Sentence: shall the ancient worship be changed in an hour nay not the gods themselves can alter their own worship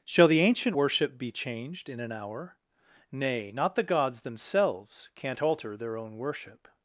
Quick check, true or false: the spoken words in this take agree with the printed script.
false